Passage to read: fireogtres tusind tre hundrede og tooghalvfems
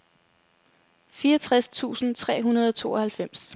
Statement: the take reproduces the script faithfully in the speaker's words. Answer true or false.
true